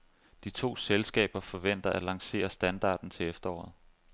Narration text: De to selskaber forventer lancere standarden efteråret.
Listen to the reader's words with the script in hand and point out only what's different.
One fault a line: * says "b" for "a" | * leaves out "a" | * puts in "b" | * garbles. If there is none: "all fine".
* puts in "at"
* puts in "til"